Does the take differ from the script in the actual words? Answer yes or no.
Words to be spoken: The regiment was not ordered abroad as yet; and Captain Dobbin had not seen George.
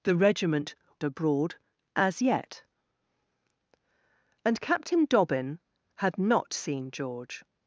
yes